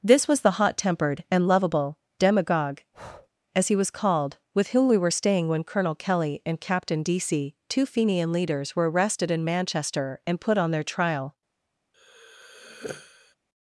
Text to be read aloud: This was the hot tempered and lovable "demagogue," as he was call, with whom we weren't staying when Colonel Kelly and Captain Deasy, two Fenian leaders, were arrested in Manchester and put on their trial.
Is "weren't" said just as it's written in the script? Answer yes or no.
no